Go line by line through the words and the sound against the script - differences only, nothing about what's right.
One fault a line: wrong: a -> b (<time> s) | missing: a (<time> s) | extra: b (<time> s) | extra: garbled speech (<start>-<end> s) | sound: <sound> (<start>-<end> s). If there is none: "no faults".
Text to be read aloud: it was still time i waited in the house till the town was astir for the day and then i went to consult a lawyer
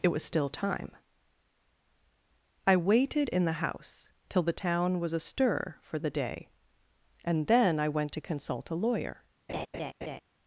sound: laugh (9.5-10.2 s)